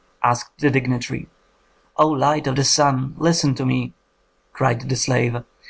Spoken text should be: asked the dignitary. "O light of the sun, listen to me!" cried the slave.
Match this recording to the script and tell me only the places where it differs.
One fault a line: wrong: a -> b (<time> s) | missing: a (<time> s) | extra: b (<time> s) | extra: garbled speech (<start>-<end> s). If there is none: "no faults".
no faults